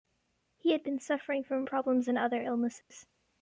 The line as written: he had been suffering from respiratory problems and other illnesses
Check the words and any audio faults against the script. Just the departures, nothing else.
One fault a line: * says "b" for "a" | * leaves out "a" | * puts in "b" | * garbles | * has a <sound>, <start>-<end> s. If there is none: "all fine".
* leaves out "respiratory"
* has a dropout, 2.8-2.9 s